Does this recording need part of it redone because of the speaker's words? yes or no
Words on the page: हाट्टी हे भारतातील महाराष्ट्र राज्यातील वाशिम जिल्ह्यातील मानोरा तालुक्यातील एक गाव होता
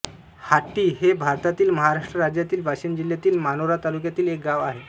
yes